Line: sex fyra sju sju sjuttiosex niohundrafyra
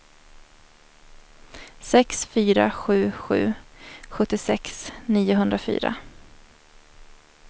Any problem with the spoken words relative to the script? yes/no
no